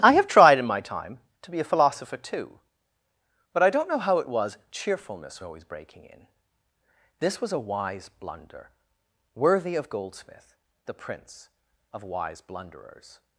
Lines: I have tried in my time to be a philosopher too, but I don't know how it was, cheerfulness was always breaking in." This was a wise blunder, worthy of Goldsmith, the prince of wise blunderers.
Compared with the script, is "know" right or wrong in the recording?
right